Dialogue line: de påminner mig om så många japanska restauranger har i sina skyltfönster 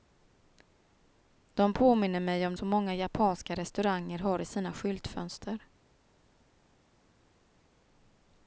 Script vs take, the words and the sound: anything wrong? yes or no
no